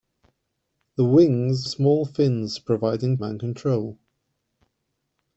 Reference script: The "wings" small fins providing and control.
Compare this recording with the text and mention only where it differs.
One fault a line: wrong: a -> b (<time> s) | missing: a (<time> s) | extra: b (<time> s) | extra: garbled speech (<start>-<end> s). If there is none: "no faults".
no faults